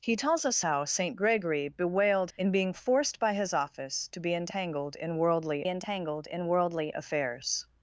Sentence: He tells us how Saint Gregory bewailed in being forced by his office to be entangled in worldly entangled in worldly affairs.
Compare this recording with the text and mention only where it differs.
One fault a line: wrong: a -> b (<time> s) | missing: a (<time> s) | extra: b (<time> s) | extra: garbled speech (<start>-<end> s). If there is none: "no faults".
no faults